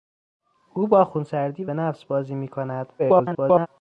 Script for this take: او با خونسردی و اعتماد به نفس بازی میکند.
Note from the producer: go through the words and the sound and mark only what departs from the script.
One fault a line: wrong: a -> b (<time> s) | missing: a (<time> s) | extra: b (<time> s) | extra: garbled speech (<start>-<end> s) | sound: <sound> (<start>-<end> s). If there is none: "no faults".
missing: اعتماد (1.7 s)
extra: garbled speech (3.0-3.7 s)